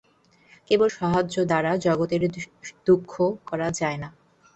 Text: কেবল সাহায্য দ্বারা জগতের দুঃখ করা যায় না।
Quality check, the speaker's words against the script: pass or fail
pass